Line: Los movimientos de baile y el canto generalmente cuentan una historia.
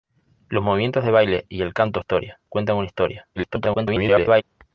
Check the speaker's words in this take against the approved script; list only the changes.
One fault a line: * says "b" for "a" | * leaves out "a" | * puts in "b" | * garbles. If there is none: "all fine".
* says "historia" for "generalmente"
* garbles